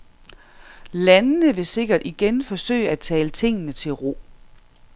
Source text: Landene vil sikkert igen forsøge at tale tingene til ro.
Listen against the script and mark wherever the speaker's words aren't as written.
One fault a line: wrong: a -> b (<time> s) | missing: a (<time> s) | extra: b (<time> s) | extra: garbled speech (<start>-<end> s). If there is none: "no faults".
no faults